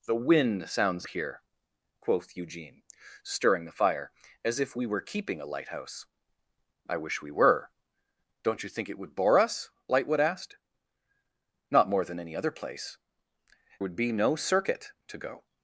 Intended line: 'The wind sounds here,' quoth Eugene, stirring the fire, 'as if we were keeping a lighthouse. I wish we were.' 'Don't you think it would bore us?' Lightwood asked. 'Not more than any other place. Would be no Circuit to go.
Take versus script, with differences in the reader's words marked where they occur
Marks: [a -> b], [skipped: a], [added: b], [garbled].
'The wind sounds here,' quoth Eugene, stirring the fire, 'as if we were keeping a lighthouse. I wish we were.' 'Don't you think it would bore us?' Lightwood asked. 'Not more than any other place. Would be no Circuit to go.